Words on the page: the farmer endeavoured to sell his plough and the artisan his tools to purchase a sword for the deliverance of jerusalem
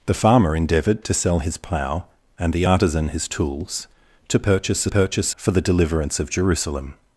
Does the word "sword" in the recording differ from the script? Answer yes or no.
yes